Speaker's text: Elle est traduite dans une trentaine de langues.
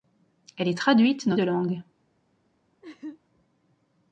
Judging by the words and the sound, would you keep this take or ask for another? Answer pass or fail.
fail